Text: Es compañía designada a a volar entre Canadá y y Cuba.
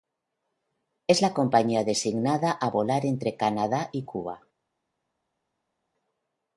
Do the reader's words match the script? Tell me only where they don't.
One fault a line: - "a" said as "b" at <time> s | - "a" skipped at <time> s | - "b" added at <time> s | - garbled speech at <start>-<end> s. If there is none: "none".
- "la" added at 1.2 s
- "a" skipped at 2.7 s
- "y" skipped at 4.0 s